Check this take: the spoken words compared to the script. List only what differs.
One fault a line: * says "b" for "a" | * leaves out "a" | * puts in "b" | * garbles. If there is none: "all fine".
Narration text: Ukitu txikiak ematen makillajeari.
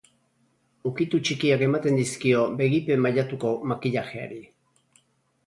* puts in "dizkio begipe mailatuko"